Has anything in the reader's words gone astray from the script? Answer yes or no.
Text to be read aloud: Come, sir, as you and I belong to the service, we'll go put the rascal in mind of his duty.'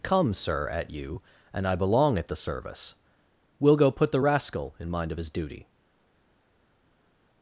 yes